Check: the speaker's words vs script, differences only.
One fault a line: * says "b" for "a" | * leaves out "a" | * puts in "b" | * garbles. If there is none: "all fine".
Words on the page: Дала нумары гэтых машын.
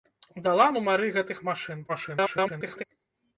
* garbles